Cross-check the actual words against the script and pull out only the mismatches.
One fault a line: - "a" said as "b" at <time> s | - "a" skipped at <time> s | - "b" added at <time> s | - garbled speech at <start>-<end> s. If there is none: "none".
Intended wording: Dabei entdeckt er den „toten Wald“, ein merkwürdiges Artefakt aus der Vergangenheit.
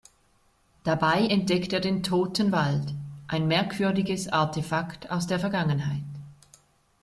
none